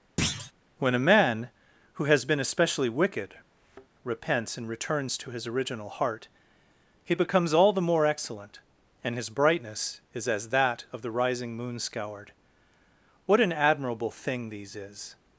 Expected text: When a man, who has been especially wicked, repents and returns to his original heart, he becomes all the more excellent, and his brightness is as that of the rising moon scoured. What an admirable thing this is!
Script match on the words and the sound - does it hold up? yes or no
no